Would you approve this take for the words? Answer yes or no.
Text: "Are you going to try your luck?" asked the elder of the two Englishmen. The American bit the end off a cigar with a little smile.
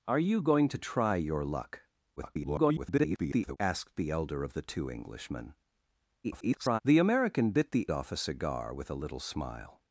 no